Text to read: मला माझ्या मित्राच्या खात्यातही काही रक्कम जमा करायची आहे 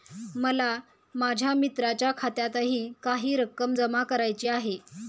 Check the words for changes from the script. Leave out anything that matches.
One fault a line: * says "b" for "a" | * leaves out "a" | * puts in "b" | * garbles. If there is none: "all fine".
all fine